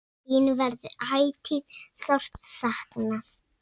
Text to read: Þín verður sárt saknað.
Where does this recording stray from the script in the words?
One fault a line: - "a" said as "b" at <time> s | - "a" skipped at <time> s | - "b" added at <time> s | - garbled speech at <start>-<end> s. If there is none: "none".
- "ætíð" added at 1.2 s